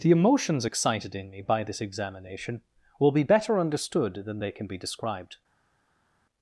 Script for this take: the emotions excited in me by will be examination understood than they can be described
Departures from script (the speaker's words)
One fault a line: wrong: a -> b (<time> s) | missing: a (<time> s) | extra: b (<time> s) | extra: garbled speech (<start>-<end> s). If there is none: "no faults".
extra: this examination (1.7 s)
wrong: examination -> better (3.2 s)